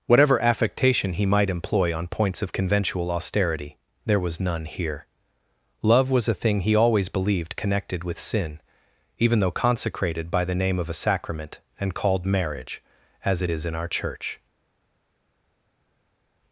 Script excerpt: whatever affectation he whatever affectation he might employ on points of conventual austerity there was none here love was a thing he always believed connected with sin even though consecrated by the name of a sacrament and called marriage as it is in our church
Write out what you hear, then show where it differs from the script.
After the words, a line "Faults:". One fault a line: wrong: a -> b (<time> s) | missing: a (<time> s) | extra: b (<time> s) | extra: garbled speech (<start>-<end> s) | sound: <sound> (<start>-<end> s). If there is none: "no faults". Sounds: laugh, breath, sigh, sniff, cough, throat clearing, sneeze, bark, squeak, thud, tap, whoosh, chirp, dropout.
whatever affectation he might employ on points of conventual austerity there was none here love was a thing he always believed connected with sin even though consecrated by the name of a sacrament and called marriage as it is in our church
Faults:
missing: whatever affectation he (1.2 s)